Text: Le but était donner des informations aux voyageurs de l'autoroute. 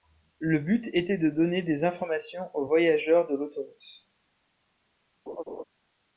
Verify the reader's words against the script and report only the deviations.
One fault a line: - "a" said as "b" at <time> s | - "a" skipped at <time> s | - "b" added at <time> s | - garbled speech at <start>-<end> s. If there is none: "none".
- "de" added at 1.2 s